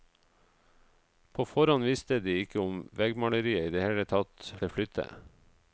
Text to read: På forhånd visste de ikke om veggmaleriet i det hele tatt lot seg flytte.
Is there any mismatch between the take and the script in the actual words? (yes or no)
yes